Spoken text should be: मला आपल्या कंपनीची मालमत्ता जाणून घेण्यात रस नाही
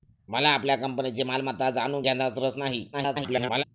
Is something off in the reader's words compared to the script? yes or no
yes